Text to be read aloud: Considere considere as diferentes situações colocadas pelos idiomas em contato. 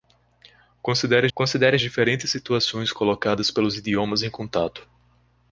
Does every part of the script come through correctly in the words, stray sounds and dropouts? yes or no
yes